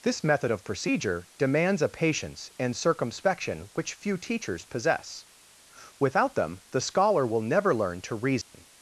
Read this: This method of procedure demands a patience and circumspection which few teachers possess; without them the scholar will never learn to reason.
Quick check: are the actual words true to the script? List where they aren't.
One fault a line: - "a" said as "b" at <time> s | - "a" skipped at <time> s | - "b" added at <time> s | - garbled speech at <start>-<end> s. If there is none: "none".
none